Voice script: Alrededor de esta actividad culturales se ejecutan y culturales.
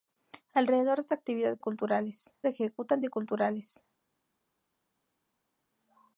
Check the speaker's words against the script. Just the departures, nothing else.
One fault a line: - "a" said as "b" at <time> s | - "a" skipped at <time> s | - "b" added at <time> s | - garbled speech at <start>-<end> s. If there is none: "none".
none